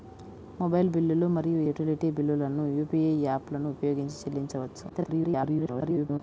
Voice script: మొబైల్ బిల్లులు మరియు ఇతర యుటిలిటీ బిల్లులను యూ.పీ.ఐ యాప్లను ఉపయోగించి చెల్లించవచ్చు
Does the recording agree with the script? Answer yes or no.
no